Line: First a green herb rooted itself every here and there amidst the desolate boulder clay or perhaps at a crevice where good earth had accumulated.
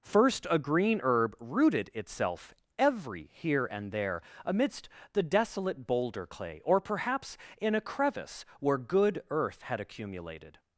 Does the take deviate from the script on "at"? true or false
true